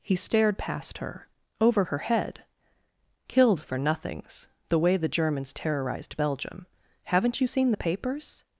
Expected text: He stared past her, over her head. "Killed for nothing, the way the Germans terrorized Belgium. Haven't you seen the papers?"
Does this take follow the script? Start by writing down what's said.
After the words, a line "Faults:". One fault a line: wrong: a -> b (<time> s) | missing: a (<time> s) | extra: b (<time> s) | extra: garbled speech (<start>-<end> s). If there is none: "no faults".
He stared past her, over her head. "Killed for nothings, the way the Germans terrorized Belgium. Haven't you seen the papers?"
Faults:
wrong: nothing -> nothings (3.8 s)